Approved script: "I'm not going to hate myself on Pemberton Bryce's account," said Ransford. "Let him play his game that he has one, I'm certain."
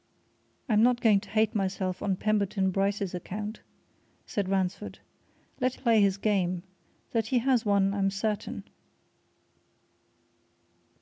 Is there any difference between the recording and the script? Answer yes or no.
yes